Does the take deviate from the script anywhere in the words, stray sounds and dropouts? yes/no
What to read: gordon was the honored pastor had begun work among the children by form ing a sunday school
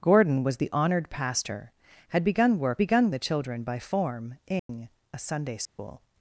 yes